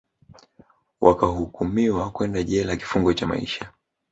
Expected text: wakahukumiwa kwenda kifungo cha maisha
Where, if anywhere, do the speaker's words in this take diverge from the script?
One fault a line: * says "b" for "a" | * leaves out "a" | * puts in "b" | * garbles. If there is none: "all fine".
* puts in "jela"